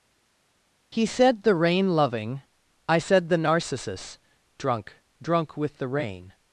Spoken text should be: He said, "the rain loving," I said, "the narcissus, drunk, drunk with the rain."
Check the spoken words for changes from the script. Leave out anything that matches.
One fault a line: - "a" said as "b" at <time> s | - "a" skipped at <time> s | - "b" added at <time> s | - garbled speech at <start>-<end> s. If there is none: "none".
none